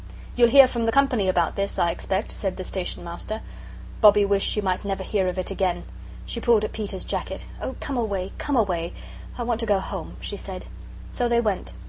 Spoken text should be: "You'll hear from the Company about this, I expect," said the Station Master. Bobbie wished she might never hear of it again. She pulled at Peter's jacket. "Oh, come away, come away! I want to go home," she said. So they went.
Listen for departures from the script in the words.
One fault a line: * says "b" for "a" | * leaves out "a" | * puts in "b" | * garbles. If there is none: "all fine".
all fine